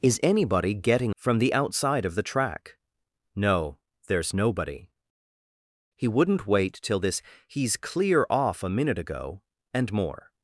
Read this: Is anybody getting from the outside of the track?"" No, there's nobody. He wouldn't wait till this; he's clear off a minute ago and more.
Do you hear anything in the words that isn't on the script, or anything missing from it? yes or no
no